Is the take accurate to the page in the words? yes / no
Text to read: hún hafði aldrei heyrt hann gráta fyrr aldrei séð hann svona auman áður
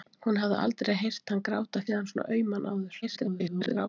no